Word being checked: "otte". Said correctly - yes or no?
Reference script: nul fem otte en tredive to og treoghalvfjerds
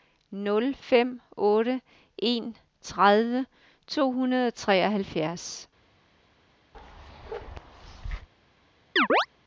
yes